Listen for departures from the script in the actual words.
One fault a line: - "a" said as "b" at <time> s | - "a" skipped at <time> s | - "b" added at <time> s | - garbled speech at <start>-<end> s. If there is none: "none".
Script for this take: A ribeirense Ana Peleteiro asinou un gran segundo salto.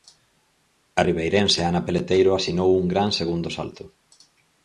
none